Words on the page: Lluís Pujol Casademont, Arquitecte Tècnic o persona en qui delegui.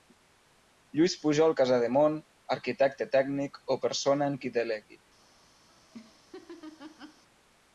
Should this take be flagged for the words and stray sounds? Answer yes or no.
yes